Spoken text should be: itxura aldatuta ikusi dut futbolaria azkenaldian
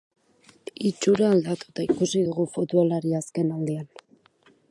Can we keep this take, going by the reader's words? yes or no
no